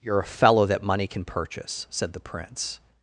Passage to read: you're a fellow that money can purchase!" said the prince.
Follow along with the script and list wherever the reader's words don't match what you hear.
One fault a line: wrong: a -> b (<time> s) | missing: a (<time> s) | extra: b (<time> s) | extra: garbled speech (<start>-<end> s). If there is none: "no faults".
no faults